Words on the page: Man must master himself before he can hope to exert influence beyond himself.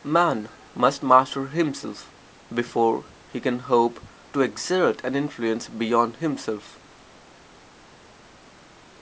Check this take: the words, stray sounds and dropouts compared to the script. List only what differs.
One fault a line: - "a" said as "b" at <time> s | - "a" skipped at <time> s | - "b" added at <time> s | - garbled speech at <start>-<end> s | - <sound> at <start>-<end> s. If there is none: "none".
- "an" added at 5.0 s